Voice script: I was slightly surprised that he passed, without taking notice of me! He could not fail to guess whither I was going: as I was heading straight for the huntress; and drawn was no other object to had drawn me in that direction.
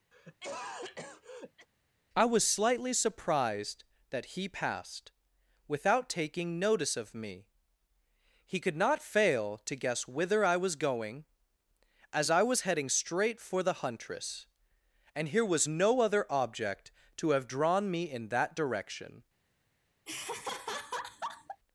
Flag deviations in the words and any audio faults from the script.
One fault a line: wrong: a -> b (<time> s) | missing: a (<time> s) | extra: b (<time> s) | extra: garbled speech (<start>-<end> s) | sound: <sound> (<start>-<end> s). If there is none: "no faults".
sound: cough (0.1-1.7 s)
wrong: drawn -> here (15.3 s)
wrong: had -> have (17.3 s)
sound: laugh (20.1-21.6 s)